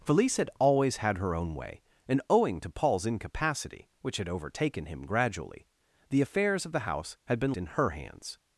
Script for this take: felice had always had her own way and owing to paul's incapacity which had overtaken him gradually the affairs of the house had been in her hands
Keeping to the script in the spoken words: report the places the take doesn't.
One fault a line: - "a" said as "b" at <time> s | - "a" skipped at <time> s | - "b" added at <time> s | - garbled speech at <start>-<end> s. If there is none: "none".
none